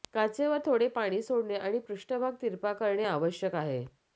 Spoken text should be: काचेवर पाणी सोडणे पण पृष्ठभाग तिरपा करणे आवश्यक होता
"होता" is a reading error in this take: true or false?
true